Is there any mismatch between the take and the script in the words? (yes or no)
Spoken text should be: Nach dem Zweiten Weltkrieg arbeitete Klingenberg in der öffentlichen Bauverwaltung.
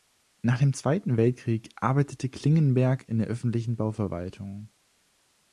no